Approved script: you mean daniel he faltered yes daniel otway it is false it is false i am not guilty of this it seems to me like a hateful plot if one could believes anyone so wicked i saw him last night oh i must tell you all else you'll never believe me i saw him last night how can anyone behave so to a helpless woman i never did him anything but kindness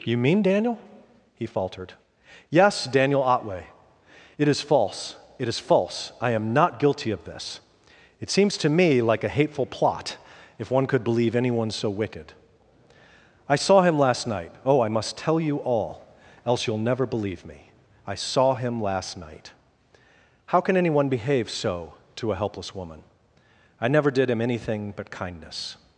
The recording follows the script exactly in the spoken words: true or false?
false